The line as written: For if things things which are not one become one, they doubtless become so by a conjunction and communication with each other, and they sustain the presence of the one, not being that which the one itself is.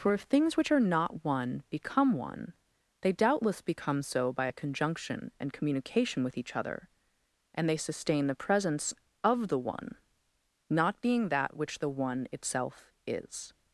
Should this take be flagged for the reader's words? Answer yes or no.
yes